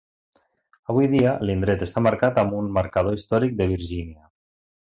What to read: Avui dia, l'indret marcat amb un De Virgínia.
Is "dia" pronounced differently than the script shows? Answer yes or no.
no